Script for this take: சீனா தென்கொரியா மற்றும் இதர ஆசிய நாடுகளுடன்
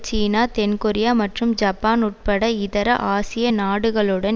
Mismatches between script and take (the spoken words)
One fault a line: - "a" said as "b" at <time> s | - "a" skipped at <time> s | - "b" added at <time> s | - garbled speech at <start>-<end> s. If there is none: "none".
- "ஜப்பான் உட்பட" added at 1.6 s